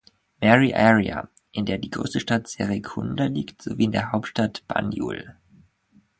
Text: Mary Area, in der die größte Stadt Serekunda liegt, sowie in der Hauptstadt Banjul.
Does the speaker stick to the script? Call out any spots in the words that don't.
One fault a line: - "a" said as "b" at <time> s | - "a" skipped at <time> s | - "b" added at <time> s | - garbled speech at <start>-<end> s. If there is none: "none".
none